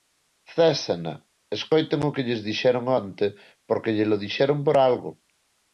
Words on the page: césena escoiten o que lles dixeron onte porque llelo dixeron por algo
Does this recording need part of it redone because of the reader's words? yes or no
no